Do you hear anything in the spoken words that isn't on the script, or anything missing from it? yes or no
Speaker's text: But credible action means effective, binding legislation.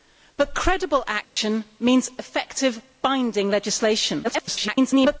yes